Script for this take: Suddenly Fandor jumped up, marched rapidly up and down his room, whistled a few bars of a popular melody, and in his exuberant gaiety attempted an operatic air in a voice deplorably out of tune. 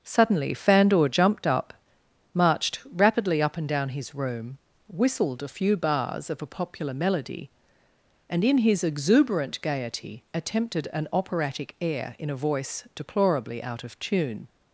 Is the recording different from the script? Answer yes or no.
no